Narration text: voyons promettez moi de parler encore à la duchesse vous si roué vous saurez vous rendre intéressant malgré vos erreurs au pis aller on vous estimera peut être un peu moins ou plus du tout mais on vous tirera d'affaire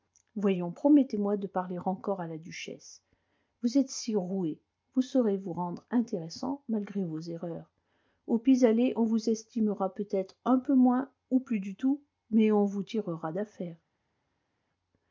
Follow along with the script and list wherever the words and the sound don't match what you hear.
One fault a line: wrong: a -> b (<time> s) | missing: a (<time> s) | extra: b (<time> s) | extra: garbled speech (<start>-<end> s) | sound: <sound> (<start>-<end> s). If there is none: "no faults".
extra: êtes (3.8 s)